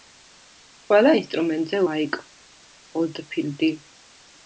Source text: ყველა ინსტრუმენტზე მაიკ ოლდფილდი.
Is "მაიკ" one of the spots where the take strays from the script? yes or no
no